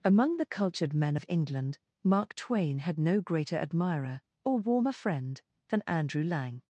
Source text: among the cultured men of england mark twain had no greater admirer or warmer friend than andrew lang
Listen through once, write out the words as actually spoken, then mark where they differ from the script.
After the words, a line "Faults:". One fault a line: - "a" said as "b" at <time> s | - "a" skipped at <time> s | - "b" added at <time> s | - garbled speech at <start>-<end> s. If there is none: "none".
among the cultured men of england mark twain had no greater admirer or warmer friend than andrew lang
Faults:
none